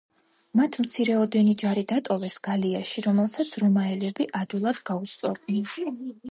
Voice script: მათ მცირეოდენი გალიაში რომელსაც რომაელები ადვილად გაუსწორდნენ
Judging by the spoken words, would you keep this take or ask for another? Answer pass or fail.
fail